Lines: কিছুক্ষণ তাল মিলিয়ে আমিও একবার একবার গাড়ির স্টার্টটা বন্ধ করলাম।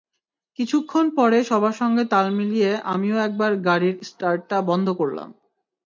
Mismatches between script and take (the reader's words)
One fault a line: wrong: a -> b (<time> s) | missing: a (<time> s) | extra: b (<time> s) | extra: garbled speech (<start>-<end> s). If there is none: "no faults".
extra: পরে সবার সঙ্গে (1.2 s)
missing: একবার (3.5 s)